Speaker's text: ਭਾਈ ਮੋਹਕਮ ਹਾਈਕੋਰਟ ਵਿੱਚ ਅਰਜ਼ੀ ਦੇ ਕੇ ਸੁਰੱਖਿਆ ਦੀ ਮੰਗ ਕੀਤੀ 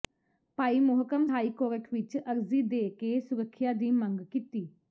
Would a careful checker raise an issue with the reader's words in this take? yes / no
no